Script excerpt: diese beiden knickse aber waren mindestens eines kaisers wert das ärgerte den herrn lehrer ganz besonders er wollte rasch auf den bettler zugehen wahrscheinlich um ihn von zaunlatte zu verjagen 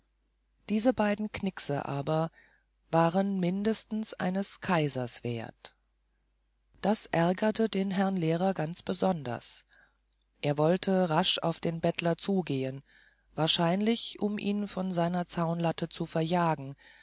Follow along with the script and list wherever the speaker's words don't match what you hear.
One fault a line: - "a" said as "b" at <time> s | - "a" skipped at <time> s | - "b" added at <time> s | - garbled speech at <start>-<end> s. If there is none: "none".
- "seiner" added at 14.9 s